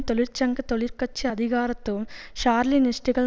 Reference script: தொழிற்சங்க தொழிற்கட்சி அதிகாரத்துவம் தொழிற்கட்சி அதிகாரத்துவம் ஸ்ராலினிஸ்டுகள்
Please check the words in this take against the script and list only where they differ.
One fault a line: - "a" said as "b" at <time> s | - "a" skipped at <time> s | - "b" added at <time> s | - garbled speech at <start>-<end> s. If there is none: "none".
- "தொழிற்கட்சி அதிகாரத்துவம்" skipped at 2.1 s